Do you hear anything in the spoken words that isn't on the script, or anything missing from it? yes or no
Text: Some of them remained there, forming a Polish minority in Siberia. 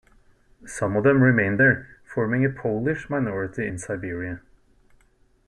no